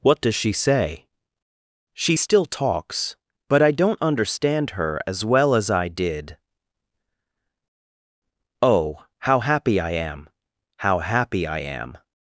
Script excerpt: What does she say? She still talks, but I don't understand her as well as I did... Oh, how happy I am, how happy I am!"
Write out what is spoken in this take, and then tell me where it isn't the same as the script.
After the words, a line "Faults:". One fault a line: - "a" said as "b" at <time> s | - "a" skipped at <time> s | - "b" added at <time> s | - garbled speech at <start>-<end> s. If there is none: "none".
What does she say? She still talks, but I don't understand her as well as I did... Oh, how happy I am, how happy I am!"
Faults:
none